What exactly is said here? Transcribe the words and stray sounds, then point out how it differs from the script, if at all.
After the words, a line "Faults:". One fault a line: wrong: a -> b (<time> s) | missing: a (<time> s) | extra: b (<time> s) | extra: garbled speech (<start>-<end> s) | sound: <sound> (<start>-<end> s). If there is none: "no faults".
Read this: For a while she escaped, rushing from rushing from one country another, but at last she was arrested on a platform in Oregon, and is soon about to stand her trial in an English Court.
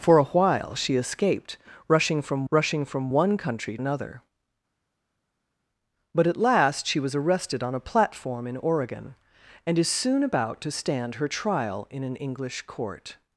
For a while she escaped, rushing from rushing from one country another, but at last she was arrested on a platform in Oregon, and is soon about to stand her trial in an English Court.
Faults:
no faults